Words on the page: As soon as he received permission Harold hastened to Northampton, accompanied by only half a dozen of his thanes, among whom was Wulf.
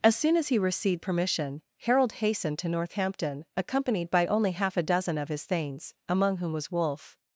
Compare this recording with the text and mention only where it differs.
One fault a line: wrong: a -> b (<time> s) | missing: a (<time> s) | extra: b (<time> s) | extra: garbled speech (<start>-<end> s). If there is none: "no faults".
no faults